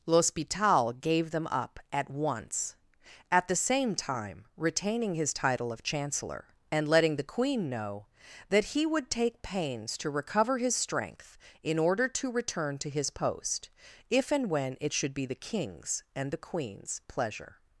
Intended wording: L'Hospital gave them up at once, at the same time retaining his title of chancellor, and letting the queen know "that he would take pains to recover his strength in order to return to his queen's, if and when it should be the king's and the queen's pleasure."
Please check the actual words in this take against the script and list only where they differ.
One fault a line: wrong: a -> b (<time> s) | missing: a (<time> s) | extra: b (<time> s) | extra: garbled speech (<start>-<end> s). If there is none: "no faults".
wrong: queen's -> post (13.1 s)